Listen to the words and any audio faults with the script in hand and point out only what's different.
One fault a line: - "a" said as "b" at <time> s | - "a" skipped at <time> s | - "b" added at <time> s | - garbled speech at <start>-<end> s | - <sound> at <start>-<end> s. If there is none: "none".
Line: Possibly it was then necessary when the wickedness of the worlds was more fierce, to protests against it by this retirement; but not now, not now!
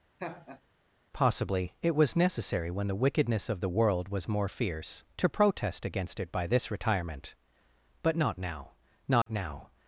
- laugh at 0.2-0.6 s
- "then" skipped at 2.1 s
- "worlds" said as "world" at 3.7 s
- "protests" said as "protest" at 5.3 s
- dropout at 9.2-9.3 s